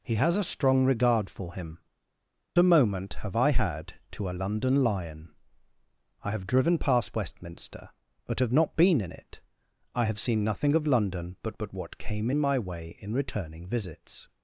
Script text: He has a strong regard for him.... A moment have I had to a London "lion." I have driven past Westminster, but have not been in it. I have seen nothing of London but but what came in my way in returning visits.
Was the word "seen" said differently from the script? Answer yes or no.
no